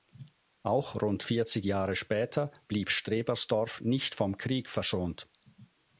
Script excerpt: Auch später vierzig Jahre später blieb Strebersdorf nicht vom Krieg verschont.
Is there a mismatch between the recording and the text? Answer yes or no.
yes